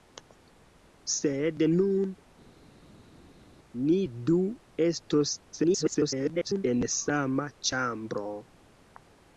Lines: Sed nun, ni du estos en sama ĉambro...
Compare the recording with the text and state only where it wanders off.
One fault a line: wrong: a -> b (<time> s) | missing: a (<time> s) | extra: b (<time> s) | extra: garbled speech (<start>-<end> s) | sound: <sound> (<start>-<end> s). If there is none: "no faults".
extra: garbled speech (5.5-6.6 s)